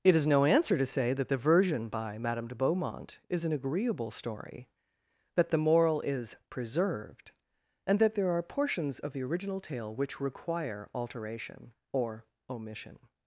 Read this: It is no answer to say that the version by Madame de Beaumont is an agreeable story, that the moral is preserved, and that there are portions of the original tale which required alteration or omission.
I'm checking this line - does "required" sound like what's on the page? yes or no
no